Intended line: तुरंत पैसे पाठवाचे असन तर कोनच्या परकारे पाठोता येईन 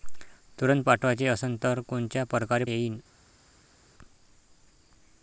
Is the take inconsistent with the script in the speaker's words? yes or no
yes